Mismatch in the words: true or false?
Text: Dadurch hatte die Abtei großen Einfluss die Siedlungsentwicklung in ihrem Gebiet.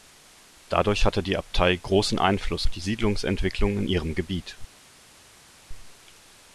false